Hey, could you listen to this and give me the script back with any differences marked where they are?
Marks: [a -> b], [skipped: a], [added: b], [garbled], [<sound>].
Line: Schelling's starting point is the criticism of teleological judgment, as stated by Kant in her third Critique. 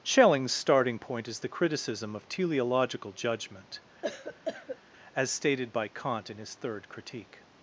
Schelling's starting point is the criticism of teleological judgment, [cough] as stated by Kant in [her -> his] third Critique.